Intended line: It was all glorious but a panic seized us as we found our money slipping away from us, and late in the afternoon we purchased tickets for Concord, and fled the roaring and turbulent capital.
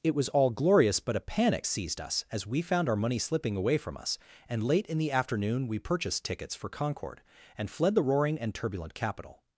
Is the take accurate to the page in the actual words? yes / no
yes